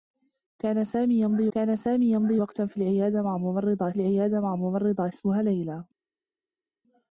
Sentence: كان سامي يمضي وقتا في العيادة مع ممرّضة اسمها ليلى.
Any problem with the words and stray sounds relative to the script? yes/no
yes